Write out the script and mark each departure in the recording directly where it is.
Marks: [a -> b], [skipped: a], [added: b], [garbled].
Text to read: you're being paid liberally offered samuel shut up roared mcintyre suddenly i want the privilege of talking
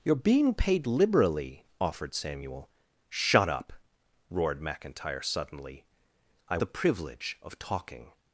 you're being paid liberally offered samuel shut up roared mcintyre suddenly i [skipped: want] the privilege of talking